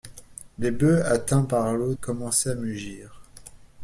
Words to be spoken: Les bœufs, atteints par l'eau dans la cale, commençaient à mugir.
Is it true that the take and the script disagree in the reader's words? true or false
true